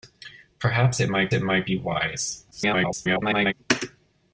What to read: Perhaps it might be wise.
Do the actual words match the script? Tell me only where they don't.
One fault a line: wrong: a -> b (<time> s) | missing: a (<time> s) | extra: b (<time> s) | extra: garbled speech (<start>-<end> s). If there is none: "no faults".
extra: it might (1.3 s)
extra: garbled speech (2.5-3.5 s)